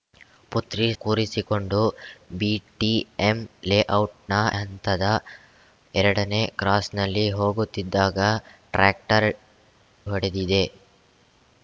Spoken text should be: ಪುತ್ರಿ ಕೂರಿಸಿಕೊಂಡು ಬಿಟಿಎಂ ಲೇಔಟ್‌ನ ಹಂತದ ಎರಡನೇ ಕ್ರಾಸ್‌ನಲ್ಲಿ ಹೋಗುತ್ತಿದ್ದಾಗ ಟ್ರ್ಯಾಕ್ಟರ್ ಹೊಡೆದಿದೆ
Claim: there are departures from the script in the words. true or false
false